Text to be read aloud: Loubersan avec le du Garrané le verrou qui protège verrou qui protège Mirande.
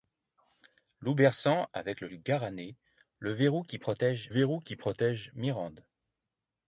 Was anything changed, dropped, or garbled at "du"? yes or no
no